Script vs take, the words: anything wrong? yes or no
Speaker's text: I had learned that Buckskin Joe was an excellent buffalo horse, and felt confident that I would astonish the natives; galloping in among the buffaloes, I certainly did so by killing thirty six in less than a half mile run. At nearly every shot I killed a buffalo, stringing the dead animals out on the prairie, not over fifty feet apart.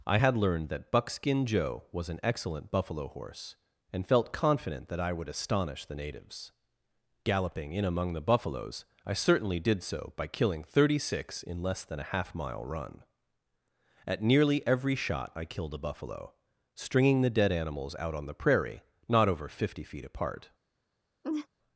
no